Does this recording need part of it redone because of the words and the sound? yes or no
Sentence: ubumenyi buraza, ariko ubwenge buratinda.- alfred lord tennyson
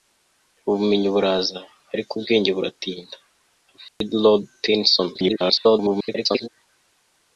yes